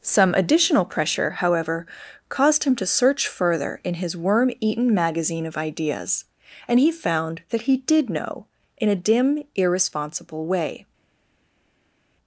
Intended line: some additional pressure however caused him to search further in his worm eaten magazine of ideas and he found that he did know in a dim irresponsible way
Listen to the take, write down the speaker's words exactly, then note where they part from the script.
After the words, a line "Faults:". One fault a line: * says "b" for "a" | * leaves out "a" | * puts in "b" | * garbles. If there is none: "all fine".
some additional pressure however caused him to search further in his worm eaten magazine of ideas and he found that he did know in a dim irresponsible way
Faults:
all fine